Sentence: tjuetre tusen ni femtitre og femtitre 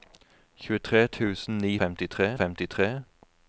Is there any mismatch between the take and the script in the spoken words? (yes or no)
no